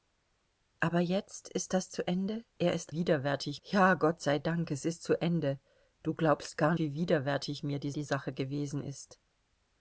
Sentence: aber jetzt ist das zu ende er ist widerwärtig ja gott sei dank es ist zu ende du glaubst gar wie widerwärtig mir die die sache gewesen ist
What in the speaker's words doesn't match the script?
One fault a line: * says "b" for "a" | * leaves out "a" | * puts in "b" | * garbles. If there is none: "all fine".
all fine